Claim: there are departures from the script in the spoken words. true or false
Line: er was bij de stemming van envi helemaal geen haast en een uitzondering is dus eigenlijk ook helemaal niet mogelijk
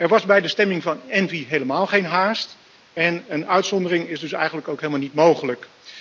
false